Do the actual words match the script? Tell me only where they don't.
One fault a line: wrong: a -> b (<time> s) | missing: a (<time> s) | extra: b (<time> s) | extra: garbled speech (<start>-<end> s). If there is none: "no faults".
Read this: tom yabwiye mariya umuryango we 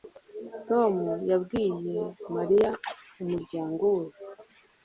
no faults